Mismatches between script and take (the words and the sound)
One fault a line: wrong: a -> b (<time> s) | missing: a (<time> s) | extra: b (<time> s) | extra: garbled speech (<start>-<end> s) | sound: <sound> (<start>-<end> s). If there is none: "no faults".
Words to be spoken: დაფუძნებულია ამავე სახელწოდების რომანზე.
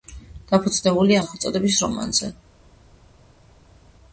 missing: ამავე (1.2 s)